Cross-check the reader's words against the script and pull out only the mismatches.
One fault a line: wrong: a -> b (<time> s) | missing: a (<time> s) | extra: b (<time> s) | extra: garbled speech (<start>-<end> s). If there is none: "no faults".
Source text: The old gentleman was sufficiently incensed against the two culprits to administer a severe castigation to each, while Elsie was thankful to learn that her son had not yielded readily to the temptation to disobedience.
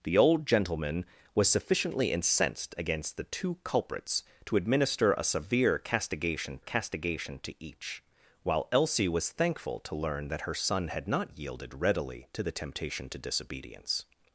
extra: castigation (6.6 s)